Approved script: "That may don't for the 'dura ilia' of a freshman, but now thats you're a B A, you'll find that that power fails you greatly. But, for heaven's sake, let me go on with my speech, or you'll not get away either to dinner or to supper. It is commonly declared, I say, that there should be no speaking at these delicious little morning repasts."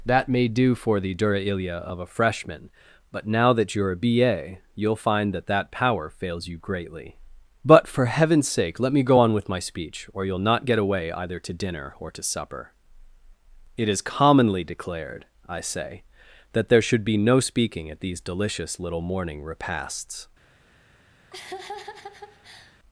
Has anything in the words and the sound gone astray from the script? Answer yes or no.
yes